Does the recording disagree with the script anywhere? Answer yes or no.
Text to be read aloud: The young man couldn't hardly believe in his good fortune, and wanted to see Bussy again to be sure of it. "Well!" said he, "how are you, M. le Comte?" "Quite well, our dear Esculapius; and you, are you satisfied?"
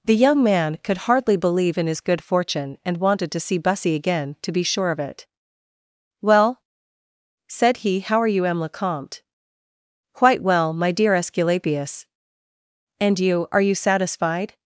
yes